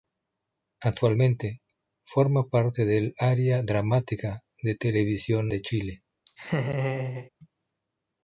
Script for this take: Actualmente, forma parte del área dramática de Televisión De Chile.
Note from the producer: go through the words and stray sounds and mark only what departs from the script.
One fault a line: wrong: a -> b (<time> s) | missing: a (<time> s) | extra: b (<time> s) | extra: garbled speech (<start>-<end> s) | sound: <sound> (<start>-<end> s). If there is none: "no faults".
sound: laugh (6.3-7.3 s)